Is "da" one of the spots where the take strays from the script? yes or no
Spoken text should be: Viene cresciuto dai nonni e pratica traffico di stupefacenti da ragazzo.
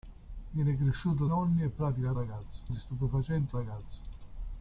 yes